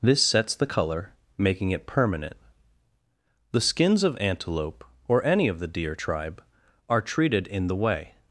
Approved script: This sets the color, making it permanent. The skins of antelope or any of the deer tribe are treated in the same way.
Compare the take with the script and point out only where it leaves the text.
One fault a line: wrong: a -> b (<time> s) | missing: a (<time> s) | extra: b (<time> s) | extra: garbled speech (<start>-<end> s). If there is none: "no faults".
missing: same (7.8 s)